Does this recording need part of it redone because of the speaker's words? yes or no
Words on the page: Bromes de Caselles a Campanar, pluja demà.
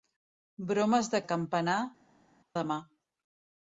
yes